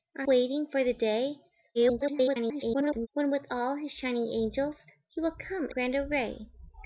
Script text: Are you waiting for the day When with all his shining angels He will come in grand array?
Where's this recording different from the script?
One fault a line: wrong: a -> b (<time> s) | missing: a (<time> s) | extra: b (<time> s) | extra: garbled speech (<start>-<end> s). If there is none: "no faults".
missing: you (0.3 s)
extra: garbled speech (1.7-3.1 s)
missing: in (5.7 s)